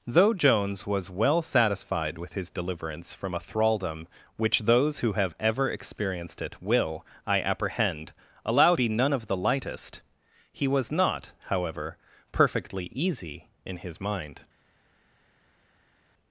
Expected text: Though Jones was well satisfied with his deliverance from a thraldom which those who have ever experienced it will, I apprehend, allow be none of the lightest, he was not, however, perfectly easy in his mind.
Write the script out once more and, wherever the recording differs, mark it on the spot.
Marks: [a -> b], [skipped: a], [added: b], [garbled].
Though Jones was well satisfied with his deliverance from a thraldom which those who have ever experienced it will, I apprehend, allow be none of the lightest, he was not, however, perfectly easy in his mind.